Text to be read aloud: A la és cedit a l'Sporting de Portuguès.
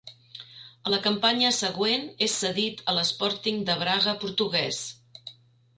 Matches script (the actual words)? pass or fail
fail